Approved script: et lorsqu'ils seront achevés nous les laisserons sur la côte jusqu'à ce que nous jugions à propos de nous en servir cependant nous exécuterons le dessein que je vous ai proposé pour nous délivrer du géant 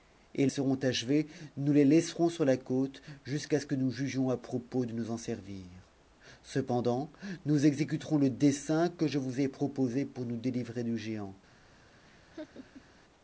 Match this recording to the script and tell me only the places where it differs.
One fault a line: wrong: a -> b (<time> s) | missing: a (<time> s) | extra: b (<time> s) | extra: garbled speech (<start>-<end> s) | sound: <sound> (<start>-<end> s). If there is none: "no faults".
missing: lorsqu'ils (0.5 s)
sound: laugh (12.0-12.9 s)